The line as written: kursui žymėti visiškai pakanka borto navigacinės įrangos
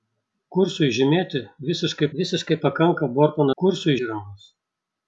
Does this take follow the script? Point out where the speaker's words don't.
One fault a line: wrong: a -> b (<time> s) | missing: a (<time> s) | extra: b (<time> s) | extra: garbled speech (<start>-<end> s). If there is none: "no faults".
extra: visiškai (2.2 s)
wrong: navigacinės -> kursui (3.6 s)